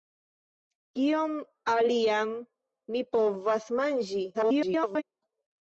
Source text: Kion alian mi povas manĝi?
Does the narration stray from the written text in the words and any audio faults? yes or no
yes